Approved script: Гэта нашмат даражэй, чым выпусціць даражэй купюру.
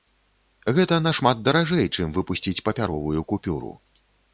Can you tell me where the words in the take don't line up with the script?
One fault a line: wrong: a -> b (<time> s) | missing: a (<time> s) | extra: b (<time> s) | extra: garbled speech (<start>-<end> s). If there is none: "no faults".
wrong: даражэй -> папяровую (2.7 s)